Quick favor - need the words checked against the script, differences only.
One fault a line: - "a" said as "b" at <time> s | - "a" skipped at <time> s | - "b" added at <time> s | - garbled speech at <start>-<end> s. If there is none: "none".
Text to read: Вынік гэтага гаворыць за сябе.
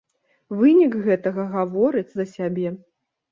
none